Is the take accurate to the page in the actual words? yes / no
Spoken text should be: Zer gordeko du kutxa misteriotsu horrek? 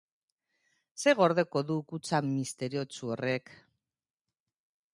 yes